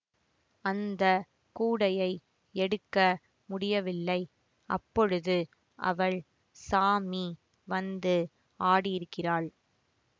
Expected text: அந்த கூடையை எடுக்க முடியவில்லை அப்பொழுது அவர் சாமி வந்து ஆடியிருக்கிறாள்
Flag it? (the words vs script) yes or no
yes